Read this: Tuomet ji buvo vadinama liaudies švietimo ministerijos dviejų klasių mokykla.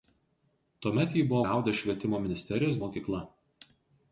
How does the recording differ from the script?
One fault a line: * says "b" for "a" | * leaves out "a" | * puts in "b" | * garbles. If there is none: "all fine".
* leaves out "vadinama"
* leaves out "dviejų klasių"